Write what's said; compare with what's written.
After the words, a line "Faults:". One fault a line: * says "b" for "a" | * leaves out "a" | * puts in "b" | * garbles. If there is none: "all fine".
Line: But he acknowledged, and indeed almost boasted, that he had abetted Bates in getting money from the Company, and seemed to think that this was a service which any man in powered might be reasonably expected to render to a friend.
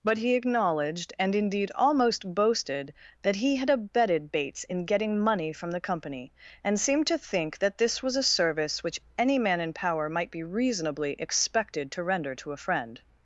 But he acknowledged, and indeed almost boasted, that he had abetted Bates in getting money from the Company, and seemed to think that this was a service which any man in power might be reasonably expected to render to a friend.
Faults:
* says "power" for "powered"